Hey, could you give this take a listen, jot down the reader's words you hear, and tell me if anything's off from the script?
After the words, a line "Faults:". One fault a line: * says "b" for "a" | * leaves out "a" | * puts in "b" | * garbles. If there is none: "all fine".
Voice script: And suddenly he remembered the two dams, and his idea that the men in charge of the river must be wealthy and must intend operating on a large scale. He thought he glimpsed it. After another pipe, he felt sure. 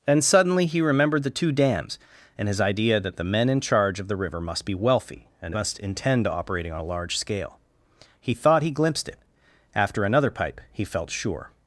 And suddenly he remembered the two dams, and his idea that the men in charge of the river must be wealthy and must intend operating on a large scale. He thought he glimpsed it. After another pipe, he felt sure.
Faults:
all fine